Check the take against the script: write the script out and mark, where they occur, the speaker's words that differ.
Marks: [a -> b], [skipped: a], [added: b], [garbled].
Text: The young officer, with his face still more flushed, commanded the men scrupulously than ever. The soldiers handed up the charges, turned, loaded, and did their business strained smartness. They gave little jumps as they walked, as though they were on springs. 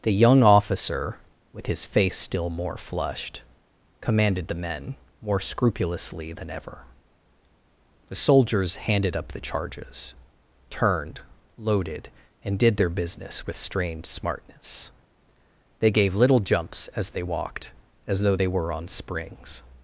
The young officer, with his face still more flushed, commanded the men [added: more] scrupulously than ever. The soldiers handed up the charges, turned, loaded, and did their business [added: with] strained smartness. They gave little jumps as they walked, as though they were on springs.